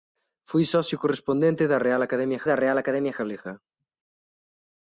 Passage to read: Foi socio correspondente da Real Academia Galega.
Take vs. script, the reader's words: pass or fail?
fail